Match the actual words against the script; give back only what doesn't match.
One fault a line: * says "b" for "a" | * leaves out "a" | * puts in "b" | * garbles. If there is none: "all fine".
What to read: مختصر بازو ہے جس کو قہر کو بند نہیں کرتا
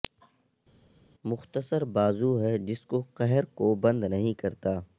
all fine